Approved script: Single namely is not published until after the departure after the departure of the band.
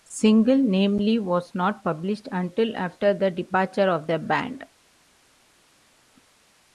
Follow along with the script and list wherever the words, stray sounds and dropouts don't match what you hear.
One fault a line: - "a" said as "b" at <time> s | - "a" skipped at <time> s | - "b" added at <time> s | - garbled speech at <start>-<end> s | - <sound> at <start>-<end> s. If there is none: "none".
- "is" said as "was" at 1.2 s
- "after the departure" skipped at 3.9 s